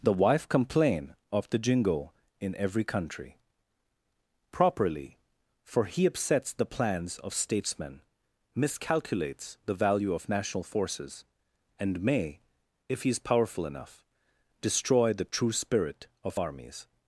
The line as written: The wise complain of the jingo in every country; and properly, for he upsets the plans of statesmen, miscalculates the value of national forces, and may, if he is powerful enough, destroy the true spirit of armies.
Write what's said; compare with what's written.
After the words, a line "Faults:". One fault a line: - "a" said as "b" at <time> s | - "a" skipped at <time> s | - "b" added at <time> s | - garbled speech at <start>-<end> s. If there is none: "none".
The wife complain of the jingo in every country; properly, for he upsets the plans of statesmen, miscalculates the value of national forces, and may, if he is powerful enough, destroy the true spirit of armies.
Faults:
- "wise" said as "wife" at 0.1 s
- "and" skipped at 3.4 s